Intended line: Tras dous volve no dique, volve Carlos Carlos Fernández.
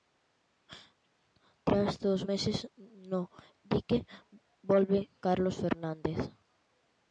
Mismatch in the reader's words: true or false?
true